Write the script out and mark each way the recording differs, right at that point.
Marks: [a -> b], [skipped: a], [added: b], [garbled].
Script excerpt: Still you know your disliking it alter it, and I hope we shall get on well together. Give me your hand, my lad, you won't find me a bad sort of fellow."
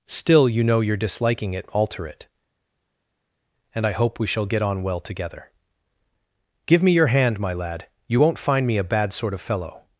Still you know your disliking it alter it, and I hope we shall get on well together. Give me your hand, my lad, you won't find me a bad sort of fellow."